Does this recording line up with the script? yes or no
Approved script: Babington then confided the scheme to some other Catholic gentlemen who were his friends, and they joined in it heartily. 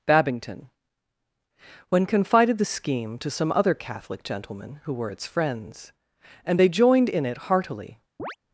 no